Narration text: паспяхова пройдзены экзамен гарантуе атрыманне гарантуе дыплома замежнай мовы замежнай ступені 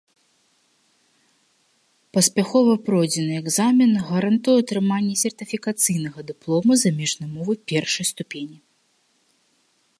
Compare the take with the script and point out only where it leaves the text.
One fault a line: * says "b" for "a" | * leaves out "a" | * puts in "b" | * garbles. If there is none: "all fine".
* says "сертыфікацыйнага" for "гарантуе"
* says "першай" for "замежнай"